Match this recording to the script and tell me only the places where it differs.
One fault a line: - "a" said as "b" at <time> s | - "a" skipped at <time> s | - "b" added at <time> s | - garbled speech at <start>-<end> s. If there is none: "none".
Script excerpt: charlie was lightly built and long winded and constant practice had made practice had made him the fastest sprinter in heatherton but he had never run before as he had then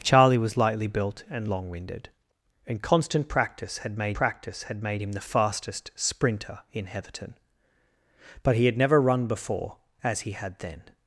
none